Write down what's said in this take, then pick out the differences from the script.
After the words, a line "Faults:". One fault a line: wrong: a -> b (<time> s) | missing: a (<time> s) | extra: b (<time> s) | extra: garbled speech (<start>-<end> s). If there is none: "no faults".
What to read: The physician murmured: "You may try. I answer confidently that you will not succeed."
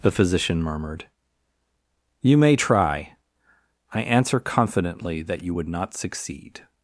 The physician murmured: "You may try. I answer confidently that you would not succeed."
Faults:
wrong: will -> would (5.5 s)